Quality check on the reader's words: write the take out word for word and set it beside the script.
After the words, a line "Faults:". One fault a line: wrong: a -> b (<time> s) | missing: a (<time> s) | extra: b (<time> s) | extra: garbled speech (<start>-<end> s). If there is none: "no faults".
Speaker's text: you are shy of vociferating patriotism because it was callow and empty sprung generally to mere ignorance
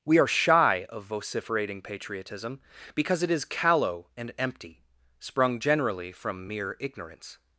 we are shy of vociferating patriotism because it is callow and empty sprung generally from mere ignorance
Faults:
wrong: you -> we (0.0 s)
wrong: was -> is (3.3 s)
wrong: to -> from (6.1 s)